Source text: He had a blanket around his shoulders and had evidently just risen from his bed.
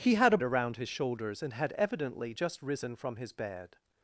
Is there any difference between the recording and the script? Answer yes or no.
yes